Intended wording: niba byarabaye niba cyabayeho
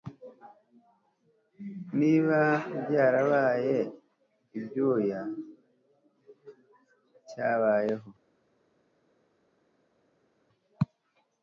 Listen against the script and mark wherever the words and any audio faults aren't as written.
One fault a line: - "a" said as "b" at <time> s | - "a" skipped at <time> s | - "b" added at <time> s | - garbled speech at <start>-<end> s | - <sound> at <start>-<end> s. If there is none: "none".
- "niba" said as "ibyuya" at 4.6 s